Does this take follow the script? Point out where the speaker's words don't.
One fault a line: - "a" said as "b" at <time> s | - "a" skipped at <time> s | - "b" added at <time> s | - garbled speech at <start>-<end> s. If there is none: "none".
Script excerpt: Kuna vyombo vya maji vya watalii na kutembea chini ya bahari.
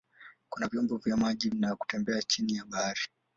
- "vya watalii" skipped at 1.5 s